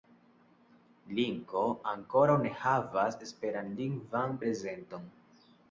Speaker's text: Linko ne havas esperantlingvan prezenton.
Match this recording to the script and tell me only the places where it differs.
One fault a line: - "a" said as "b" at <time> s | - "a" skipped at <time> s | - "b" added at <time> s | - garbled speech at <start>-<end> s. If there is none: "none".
- "ankoraŭ" added at 1.9 s